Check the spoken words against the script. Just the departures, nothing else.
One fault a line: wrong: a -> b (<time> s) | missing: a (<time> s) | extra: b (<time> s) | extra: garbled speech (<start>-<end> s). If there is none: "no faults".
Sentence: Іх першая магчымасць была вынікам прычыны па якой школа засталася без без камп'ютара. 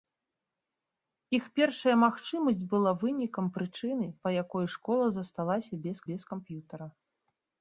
no faults